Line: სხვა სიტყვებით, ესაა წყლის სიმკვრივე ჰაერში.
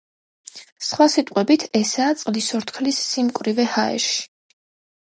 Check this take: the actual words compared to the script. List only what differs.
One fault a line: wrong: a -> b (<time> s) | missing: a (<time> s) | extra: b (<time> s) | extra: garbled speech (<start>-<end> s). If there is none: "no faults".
extra: ორთქლის (2.6 s)